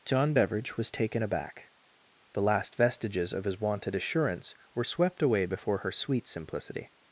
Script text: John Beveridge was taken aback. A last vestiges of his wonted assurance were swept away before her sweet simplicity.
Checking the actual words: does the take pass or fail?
fail